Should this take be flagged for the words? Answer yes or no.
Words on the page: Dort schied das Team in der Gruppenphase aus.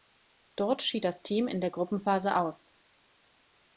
no